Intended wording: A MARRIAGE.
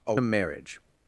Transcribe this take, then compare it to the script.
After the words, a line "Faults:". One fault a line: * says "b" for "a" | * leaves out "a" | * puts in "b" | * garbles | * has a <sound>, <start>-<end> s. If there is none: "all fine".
A MARRIAGE.
Faults:
all fine